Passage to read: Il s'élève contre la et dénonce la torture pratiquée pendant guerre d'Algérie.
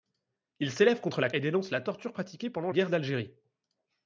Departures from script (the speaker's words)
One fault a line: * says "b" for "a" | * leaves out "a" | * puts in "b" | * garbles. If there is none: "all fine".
all fine